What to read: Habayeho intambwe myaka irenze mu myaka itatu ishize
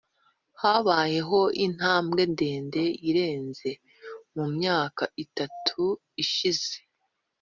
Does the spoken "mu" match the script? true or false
true